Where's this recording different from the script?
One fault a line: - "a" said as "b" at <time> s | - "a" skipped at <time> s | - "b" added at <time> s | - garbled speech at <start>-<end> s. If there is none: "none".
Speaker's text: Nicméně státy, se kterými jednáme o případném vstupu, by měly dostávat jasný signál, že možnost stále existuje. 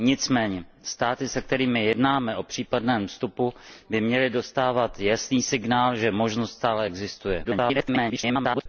- garbled speech at 7.4-8.7 s